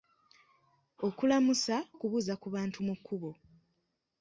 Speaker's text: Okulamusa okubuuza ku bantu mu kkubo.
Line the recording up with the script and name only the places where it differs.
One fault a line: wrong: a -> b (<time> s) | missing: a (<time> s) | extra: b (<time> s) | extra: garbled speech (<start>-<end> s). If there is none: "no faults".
no faults